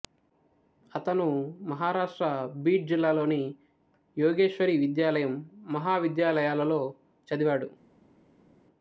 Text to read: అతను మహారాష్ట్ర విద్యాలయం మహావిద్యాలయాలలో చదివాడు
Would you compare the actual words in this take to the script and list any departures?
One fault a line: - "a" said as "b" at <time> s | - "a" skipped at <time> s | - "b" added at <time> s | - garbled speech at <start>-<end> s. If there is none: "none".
- "బీడ్ జిల్లాలోని యోగేశ్వరి" added at 2.6 s